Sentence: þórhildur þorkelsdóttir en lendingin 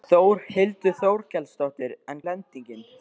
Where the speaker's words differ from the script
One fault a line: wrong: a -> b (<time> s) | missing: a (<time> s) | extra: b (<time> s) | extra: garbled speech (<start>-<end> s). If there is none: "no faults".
no faults